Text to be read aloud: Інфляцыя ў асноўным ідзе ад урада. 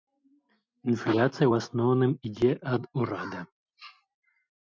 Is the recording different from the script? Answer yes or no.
no